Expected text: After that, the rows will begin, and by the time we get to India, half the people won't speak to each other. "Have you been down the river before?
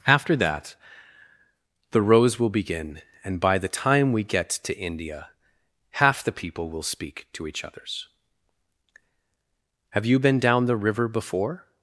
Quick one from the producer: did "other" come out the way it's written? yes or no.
no